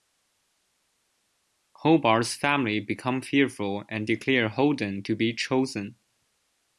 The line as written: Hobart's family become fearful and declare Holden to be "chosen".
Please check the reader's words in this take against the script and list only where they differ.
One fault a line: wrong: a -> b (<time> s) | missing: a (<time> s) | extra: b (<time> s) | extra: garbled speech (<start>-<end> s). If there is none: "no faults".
no faults